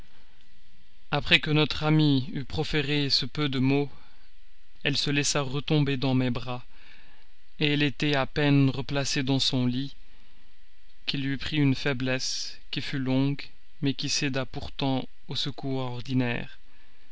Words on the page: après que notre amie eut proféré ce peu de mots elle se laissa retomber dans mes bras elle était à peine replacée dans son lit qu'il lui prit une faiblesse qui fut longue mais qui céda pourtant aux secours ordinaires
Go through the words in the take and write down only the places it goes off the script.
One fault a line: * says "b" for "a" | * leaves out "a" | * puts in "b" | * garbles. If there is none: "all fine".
all fine